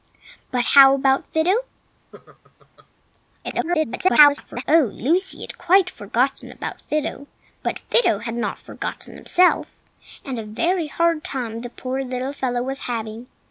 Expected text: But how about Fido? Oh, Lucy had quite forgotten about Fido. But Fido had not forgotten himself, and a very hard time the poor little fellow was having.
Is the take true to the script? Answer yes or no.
no